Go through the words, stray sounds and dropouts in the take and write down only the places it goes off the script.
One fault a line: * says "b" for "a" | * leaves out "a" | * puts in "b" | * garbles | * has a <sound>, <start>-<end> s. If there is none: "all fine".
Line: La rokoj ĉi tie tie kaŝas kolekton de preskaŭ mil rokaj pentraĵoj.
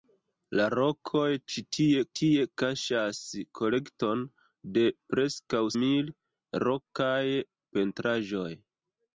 all fine